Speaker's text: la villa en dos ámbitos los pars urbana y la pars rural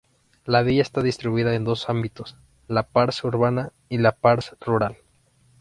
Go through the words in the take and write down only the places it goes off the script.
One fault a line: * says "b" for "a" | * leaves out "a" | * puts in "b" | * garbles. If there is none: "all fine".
* puts in "está distribuida"
* says "la" for "los"